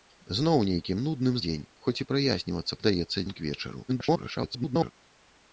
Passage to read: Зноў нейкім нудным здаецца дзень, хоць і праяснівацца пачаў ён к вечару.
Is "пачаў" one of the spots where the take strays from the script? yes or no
yes